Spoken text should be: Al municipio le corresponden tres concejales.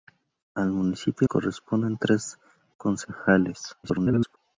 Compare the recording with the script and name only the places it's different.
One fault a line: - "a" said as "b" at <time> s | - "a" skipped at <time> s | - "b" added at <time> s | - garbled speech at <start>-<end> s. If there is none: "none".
- "le" skipped at 1.3 s
- garbled speech at 3.8-4.4 s